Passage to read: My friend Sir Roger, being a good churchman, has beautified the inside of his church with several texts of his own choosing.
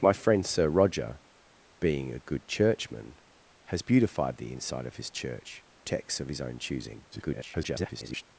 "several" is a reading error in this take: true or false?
true